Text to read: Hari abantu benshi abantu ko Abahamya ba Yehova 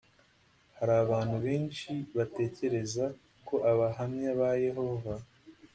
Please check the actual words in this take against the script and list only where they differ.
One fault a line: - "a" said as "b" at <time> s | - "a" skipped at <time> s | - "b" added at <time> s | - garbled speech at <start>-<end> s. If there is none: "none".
- "abantu" said as "batekereza" at 2.2 s